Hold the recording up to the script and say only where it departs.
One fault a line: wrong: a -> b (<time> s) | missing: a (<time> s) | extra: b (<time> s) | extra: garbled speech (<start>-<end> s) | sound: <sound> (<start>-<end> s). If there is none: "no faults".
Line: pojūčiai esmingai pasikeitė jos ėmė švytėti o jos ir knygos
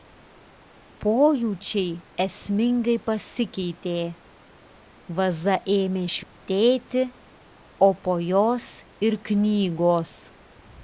wrong: jos -> vaza (5.2 s)
sound: dropout (6.2-6.4 s)
extra: po (8.1 s)